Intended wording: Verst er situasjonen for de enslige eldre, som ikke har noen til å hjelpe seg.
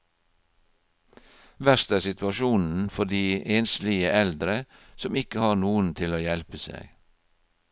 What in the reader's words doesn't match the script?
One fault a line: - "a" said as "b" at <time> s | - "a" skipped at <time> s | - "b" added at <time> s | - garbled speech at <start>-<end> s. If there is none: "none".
none